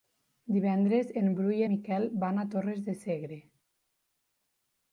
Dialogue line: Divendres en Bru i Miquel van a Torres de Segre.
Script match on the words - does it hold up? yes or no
yes